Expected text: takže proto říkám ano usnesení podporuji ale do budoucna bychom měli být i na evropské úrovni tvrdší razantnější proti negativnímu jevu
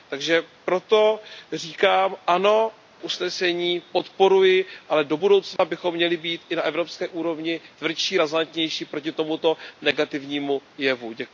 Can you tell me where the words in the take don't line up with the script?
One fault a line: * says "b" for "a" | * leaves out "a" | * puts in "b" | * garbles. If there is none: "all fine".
* puts in "tomuto"